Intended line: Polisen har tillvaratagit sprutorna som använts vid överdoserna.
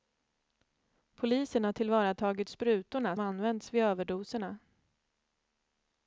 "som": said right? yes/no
no